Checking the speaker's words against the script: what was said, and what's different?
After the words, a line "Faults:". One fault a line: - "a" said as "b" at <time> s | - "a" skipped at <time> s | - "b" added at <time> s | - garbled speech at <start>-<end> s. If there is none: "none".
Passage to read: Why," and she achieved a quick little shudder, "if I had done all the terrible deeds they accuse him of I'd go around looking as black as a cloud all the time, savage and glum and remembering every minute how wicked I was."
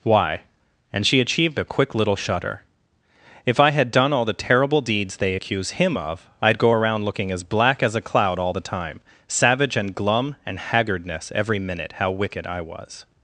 Why," and she achieved a quick little shudder, "if I had done all the terrible deeds they accuse him of I'd go around looking as black as a cloud all the time, savage and glum and haggardness every minute how wicked I was."
Faults:
- "remembering" said as "haggardness" at 10.6 s